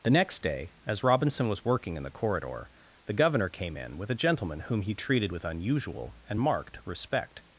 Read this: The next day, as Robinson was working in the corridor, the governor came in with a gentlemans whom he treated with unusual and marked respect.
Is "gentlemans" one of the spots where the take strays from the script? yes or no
yes